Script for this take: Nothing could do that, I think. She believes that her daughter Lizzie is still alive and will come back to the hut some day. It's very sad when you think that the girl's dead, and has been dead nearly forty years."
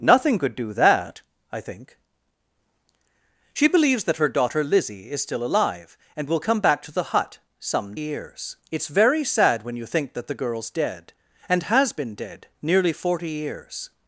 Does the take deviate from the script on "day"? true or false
true